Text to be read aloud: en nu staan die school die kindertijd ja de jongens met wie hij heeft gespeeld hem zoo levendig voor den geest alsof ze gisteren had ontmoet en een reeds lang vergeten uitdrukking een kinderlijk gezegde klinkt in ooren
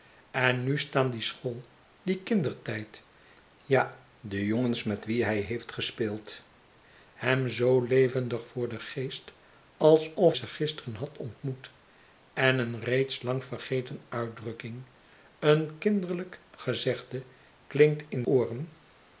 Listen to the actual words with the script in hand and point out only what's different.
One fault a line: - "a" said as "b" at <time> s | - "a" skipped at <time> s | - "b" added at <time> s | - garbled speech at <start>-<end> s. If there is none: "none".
none